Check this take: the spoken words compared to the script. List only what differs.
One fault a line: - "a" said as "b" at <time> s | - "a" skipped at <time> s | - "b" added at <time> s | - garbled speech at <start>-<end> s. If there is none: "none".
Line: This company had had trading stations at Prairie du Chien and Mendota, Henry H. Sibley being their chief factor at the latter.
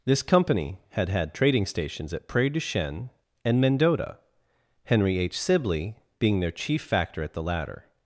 none